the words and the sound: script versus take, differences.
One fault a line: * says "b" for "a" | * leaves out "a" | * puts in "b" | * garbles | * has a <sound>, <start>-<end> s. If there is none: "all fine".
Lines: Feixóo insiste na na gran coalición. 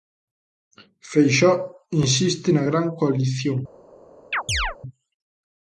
* leaves out "na"
* has a chirp, 4.3-4.8 s